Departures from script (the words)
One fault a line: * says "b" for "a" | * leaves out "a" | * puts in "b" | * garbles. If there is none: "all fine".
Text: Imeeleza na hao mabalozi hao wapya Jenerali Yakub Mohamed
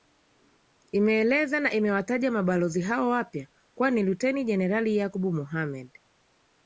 * says "imewataja" for "hao"
* puts in "kuwa ni Luteni"